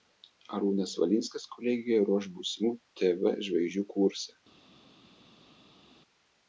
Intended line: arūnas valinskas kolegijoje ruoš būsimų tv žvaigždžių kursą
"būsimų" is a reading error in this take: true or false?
false